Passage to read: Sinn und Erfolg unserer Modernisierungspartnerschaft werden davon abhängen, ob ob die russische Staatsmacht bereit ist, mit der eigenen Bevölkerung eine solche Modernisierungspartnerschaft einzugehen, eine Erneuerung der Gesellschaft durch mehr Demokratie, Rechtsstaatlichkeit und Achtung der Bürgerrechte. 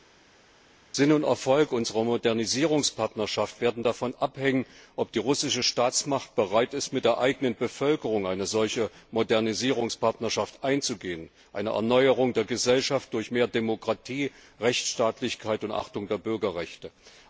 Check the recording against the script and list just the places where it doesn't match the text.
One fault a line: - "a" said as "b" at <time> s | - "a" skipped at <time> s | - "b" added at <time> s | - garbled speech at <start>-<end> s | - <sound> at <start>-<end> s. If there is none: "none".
- "ob" skipped at 5.1 s